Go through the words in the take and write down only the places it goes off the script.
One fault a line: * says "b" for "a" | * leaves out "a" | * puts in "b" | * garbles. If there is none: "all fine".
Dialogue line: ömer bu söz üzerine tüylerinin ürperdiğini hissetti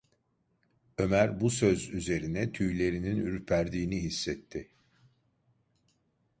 all fine